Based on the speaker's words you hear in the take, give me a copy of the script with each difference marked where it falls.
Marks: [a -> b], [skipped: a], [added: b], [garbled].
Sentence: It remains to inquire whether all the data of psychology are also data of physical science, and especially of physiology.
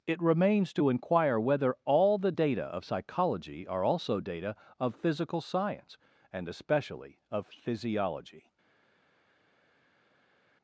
It remains to inquire whether all the data of psychology are also data of physical science, and especially of physiology.